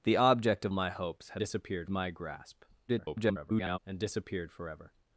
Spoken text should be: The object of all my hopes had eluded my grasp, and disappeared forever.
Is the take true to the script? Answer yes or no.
no